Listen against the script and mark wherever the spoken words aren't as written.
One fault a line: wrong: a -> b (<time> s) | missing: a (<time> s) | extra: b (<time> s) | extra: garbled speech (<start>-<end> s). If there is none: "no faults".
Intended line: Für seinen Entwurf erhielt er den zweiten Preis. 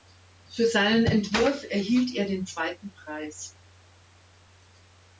no faults